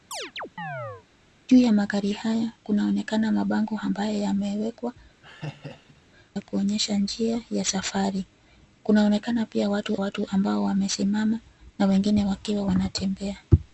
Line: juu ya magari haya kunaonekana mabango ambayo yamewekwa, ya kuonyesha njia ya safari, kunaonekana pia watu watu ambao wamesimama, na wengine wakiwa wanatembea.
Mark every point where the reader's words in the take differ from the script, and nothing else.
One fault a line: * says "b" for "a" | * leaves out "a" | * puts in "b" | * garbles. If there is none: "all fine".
all fine